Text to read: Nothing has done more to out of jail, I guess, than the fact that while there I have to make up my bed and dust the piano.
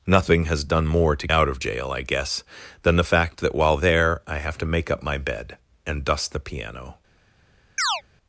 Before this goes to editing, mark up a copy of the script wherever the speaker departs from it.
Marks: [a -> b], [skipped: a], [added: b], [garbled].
Nothing has done more to out of jail, I guess, than the fact that while there I have to make up my bed and dust the piano.